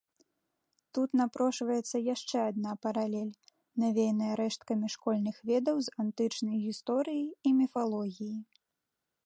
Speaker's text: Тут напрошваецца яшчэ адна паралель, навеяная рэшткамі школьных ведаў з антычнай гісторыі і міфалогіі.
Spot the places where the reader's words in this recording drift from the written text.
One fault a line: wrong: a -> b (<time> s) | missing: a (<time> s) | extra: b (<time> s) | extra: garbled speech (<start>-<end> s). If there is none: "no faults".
no faults